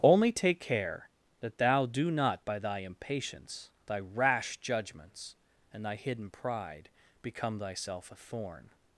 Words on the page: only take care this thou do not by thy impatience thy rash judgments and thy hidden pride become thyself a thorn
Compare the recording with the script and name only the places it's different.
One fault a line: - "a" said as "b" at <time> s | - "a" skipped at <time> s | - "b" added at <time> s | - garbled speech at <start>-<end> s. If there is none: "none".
- "this" said as "that" at 1.4 s